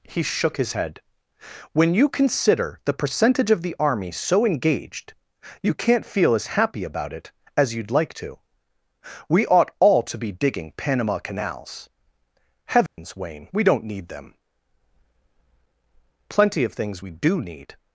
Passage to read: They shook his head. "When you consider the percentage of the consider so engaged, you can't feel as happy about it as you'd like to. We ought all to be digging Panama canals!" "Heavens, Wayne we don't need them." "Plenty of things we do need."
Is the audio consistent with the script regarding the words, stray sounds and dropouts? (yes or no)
no